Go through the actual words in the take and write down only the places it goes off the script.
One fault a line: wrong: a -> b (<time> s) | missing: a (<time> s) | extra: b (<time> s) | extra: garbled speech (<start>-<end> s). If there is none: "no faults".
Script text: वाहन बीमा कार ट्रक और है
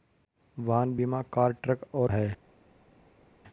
no faults